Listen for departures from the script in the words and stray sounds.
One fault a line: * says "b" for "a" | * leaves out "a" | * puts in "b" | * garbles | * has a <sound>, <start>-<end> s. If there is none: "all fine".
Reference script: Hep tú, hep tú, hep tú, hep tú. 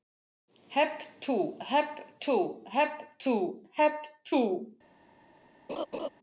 * has a laugh, 5.7-6.1 s